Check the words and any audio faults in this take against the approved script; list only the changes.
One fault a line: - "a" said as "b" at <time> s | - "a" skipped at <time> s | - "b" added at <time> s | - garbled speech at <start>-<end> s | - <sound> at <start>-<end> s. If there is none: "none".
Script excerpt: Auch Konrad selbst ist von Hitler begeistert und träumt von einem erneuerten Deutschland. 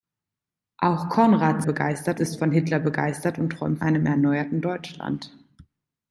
- "selbst" said as "begeistert" at 1.6 s
- "von" skipped at 3.8 s